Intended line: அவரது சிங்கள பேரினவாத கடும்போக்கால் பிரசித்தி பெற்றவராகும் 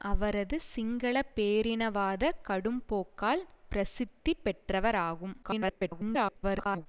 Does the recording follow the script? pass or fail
fail